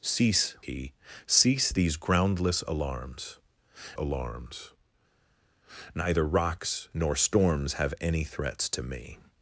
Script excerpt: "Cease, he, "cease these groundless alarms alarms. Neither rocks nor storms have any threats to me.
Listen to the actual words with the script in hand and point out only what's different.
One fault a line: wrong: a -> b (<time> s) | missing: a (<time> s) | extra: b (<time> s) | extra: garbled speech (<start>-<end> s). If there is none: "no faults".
no faults